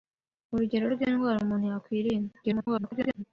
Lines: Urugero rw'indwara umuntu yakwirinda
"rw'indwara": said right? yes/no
yes